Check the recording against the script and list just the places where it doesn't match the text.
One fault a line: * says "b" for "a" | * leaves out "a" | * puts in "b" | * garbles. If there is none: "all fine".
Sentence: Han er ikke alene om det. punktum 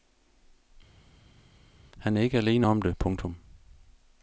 all fine